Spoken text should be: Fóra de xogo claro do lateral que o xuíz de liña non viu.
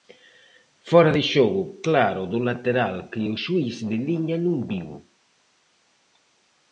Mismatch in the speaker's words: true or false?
false